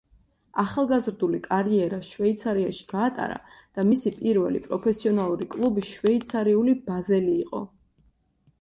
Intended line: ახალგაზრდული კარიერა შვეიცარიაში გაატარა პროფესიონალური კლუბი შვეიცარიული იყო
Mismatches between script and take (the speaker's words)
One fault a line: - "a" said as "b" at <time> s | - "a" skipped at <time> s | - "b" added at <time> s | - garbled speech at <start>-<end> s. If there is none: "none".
- "და მისი პირველი" added at 3.6 s
- "ბაზელი" added at 6.9 s